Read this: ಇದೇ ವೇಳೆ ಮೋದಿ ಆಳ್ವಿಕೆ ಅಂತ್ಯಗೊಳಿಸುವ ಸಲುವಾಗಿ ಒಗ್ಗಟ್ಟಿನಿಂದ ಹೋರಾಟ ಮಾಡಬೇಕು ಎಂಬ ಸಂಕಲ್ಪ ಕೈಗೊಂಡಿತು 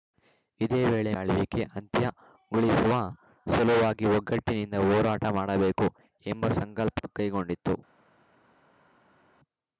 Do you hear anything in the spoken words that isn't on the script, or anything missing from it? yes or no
yes